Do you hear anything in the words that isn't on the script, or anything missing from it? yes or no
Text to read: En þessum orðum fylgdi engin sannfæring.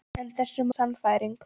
yes